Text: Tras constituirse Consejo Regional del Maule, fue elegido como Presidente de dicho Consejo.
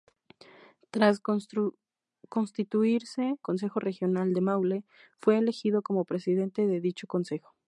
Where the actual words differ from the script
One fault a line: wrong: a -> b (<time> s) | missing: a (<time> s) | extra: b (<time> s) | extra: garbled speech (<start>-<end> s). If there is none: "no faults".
no faults